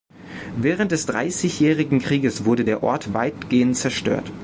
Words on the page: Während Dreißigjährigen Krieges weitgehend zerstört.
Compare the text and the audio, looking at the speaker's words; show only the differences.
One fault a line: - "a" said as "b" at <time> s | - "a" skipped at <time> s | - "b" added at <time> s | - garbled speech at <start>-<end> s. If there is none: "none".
- "des" added at 0.9 s
- "wurde der Ort" added at 2.4 s